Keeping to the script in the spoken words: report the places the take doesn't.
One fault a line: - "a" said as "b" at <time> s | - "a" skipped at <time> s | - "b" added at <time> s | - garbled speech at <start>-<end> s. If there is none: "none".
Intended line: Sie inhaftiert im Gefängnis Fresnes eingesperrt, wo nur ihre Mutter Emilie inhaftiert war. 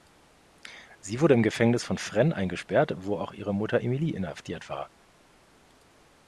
- "inhaftiert" said as "wurde" at 1.2 s
- "von" added at 1.8 s
- "nur" said as "auch" at 3.2 s